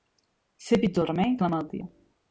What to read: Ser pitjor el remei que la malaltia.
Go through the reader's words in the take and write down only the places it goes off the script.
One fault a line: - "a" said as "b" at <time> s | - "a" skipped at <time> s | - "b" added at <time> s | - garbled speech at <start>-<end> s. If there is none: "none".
none